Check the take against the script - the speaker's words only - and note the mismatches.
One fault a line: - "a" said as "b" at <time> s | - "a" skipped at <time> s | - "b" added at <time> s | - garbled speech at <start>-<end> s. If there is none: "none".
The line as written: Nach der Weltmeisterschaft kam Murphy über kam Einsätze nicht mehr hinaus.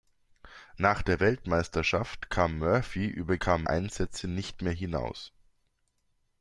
none